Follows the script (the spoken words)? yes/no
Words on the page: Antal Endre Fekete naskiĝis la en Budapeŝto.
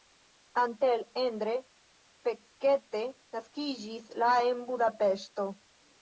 yes